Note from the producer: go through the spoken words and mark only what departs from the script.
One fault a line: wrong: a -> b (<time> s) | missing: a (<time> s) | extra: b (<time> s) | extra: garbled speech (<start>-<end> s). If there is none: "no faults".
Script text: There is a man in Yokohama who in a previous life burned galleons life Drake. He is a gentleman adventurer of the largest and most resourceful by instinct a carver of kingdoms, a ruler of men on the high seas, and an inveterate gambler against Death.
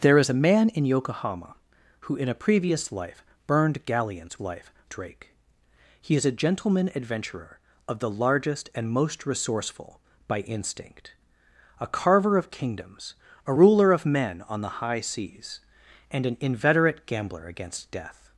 no faults